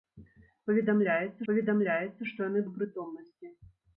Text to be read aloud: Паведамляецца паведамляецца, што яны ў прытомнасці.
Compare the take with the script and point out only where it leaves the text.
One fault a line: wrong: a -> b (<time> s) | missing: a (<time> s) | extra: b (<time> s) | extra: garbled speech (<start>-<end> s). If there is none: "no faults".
no faults